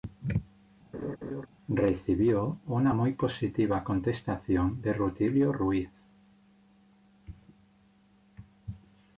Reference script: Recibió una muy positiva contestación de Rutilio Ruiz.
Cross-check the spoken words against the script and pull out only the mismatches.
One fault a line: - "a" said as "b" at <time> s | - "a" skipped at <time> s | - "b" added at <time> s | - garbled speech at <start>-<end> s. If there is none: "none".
none